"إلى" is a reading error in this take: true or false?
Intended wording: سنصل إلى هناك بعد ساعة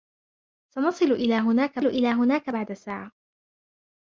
false